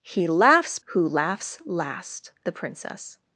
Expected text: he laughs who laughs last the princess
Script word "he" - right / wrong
right